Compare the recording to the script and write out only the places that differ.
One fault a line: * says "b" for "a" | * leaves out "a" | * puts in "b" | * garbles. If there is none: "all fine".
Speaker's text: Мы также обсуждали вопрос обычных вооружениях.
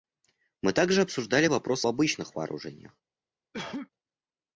all fine